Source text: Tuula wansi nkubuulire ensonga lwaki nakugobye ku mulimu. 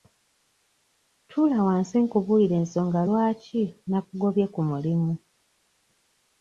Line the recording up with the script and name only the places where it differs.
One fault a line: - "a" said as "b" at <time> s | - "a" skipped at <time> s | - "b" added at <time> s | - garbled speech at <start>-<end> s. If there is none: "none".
none